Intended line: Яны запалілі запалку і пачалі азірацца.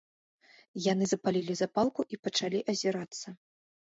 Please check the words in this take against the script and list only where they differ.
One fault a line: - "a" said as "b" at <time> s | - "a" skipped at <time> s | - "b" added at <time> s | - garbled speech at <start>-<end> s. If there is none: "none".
none